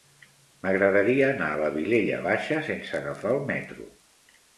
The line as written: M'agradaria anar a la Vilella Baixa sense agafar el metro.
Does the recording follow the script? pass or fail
pass